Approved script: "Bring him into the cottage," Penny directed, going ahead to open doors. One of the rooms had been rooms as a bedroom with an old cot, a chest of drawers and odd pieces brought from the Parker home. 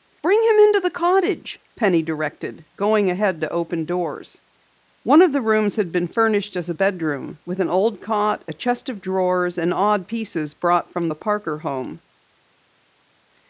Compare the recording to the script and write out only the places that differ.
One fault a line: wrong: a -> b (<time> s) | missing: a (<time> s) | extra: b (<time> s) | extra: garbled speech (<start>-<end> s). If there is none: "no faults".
wrong: rooms -> furnished (6.1 s)